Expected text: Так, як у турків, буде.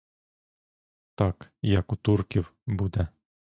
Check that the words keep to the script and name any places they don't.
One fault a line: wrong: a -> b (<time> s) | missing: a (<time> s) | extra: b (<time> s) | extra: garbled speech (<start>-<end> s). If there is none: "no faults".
no faults